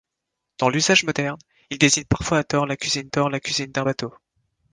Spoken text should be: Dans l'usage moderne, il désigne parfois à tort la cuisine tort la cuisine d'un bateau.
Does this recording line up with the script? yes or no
yes